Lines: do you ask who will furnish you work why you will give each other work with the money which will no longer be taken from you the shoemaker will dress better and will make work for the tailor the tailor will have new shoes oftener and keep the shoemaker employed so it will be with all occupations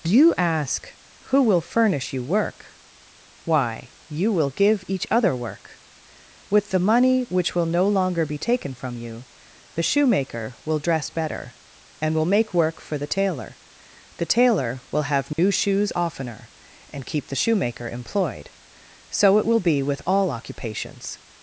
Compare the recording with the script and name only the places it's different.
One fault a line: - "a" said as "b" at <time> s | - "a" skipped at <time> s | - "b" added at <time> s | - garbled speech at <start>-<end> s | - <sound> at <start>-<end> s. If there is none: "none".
- dropout at 15.3-15.4 s